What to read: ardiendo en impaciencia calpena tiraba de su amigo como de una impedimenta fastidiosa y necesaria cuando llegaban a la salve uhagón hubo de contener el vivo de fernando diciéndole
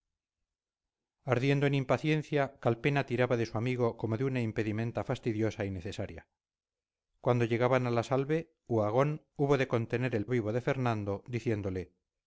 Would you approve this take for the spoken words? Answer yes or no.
yes